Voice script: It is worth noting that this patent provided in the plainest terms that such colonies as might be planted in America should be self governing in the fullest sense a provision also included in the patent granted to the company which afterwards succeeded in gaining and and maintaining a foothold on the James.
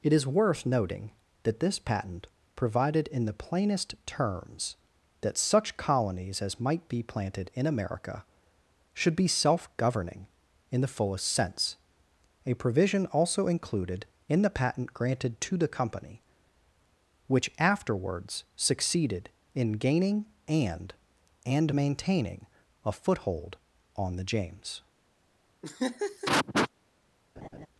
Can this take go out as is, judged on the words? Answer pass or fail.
pass